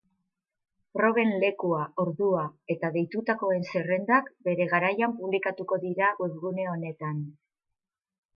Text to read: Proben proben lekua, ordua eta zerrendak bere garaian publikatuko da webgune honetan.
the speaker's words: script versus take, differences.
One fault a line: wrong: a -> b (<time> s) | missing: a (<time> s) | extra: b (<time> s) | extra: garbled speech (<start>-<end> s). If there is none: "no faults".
missing: proben (1.3 s)
extra: deitutakoen (3.0 s)
wrong: da -> dira (5.9 s)